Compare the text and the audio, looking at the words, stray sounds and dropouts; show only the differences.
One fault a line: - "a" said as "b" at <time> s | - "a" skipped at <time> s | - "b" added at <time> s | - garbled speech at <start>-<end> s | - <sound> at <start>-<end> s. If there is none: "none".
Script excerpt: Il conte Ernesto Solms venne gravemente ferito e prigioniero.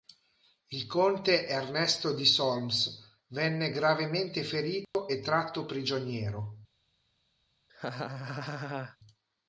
- "di" added at 2.1 s
- dropout at 4.8-4.9 s
- "tratto" added at 5.2 s
- laugh at 7.7-9.0 s